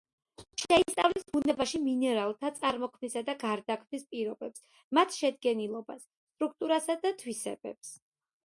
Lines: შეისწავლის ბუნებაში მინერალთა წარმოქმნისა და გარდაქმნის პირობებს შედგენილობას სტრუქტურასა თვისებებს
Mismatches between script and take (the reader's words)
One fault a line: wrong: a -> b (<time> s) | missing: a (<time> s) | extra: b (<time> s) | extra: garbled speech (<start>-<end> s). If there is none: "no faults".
extra: მათ (5.0 s)
extra: და (7.0 s)